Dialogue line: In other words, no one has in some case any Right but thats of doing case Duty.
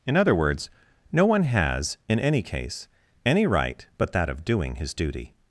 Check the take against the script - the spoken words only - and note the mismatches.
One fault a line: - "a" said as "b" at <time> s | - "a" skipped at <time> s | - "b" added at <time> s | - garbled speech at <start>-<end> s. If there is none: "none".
- "some" said as "any" at 2.2 s
- "thats" said as "that" at 4.1 s
- "case" said as "his" at 4.8 s